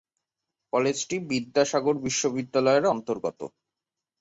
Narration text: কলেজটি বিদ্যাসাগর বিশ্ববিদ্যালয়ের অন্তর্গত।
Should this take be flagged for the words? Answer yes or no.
no